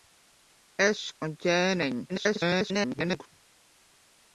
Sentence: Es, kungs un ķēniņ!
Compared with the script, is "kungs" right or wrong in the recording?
wrong